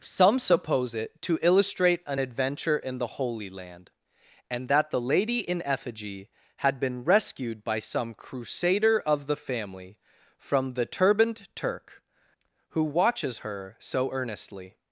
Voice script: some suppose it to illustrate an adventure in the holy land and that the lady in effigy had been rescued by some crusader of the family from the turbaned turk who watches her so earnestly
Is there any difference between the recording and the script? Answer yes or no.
no